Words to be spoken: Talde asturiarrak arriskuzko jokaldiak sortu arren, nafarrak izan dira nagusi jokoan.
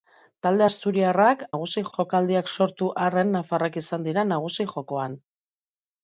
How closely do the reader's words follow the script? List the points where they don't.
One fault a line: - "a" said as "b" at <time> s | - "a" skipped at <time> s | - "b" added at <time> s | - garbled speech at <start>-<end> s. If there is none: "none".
- "arriskuzko" said as "nagusi" at 1.5 s